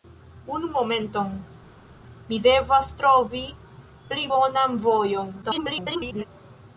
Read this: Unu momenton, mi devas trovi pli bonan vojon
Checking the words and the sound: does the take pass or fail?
fail